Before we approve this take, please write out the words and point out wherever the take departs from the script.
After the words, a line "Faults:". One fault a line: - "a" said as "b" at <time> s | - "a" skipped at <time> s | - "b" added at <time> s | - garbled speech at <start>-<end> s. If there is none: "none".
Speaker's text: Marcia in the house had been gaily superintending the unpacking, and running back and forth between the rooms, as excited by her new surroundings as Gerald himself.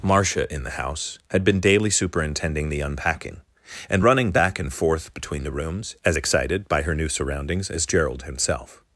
Marcia in the house had been daily superintending the unpacking, and running back and forth between the rooms, as excited by her new surroundings as Gerald himself.
Faults:
- "gaily" said as "daily" at 1.6 s